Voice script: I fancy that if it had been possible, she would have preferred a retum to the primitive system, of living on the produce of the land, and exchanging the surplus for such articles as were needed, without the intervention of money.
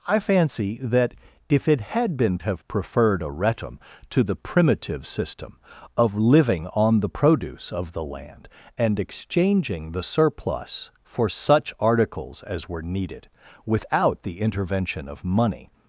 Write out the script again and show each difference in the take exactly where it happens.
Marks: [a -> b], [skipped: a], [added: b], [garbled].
I fancy that if it had been [skipped: possible, she would] have preferred a retum to the primitive system, of living on the produce of the land, and exchanging the surplus for such articles as were needed, without the intervention of money.